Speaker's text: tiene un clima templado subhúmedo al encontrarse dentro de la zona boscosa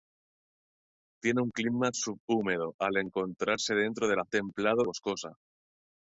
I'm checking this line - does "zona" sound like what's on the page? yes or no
no